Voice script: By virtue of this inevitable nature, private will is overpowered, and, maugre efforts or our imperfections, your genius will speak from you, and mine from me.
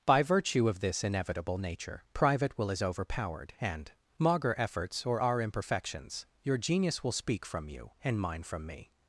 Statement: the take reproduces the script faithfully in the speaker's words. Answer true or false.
true